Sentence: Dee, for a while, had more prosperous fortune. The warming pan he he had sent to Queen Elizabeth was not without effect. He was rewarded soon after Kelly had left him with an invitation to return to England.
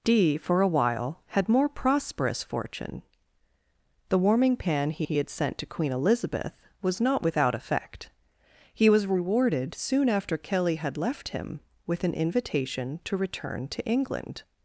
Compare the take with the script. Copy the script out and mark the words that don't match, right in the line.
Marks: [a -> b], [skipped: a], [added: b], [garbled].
Dee, for a while, had more prosperous fortune. The warming pan he he had sent to Queen Elizabeth was not without effect. He was rewarded soon after Kelly had left him with an invitation to return to England.